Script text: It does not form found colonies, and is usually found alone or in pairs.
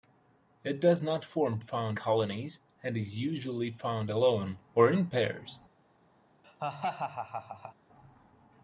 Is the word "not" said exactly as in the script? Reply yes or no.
yes